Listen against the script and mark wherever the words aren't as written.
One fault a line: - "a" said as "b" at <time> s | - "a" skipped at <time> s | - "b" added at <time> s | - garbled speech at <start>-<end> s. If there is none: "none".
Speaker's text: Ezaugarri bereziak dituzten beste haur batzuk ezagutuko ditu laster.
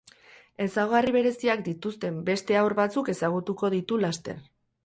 none